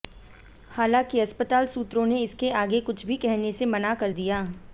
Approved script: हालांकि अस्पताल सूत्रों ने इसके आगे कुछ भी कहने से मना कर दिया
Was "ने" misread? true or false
false